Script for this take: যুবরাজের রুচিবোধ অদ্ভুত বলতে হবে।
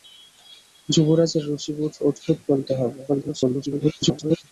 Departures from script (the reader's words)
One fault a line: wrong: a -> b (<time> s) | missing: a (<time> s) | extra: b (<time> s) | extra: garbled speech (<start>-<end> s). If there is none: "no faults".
extra: garbled speech (3.1-4.4 s)